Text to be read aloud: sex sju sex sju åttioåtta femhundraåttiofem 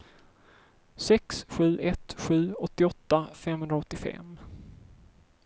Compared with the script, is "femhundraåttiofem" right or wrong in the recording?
right